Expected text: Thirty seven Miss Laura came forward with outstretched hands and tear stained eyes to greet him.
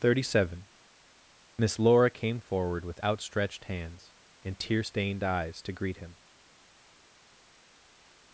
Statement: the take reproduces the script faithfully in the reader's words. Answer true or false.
true